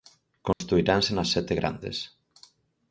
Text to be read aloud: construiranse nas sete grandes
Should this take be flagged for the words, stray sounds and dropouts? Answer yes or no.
yes